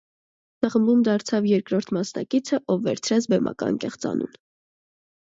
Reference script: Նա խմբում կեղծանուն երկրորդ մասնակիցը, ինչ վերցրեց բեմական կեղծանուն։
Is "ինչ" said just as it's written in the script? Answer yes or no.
no